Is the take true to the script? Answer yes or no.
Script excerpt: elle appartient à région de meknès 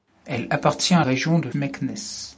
yes